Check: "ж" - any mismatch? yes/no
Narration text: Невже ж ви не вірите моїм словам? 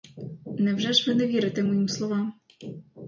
no